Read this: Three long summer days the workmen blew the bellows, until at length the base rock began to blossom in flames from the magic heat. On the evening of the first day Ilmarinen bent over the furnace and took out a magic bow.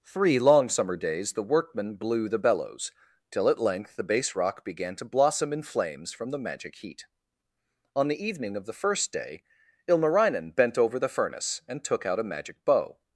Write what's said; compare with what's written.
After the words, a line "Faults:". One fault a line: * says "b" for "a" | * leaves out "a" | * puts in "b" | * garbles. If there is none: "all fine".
Three long summer days the workmen blew the bellows, till at length the base rock began to blossom in flames from the magic heat. On the evening of the first day Ilmarinen bent over the furnace and took out a magic bow.
Faults:
* says "till" for "until"